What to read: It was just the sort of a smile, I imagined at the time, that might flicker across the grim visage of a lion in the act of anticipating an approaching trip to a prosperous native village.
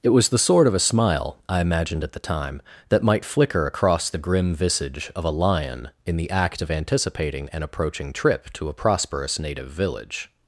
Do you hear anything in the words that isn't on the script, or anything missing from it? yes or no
yes